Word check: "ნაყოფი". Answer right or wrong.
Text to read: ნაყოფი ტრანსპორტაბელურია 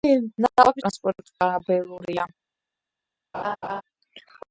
right